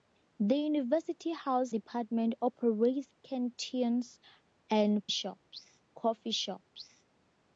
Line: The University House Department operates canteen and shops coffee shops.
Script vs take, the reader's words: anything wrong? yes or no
no